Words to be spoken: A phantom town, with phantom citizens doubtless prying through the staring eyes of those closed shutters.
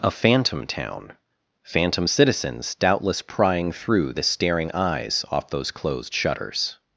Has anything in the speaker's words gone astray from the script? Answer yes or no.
yes